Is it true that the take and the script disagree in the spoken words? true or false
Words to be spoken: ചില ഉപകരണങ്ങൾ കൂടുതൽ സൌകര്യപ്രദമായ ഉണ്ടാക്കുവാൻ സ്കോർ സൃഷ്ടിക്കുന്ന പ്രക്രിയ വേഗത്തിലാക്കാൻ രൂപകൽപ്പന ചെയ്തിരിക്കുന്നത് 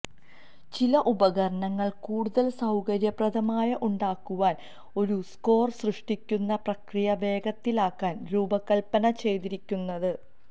true